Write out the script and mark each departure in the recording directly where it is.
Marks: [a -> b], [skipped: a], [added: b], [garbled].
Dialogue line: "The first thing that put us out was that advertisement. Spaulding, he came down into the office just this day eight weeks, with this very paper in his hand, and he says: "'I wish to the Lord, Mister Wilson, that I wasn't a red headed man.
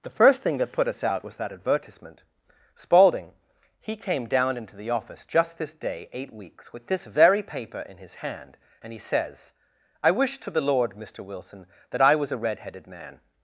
"The first thing that put us out was that advertisement. Spaulding, he came down into the office just this day eight weeks, with this very paper in his hand, and he says: "'I wish to the Lord, Mister Wilson, that I [wasn't -> was] a red headed man.